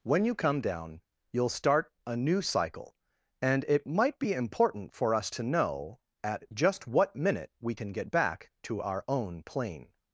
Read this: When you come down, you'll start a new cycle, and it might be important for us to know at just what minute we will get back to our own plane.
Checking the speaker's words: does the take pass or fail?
fail